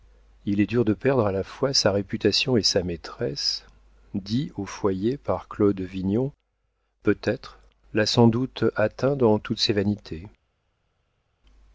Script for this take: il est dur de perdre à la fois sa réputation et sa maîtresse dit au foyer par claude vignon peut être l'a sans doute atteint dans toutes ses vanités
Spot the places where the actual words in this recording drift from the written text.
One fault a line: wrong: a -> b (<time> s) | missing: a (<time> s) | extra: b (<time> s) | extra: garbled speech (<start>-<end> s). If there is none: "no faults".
no faults